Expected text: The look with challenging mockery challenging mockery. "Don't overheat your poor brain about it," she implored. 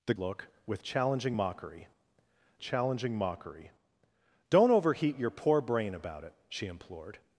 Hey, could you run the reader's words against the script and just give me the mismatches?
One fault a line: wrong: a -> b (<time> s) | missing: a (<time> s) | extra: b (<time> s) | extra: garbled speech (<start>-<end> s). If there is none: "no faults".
no faults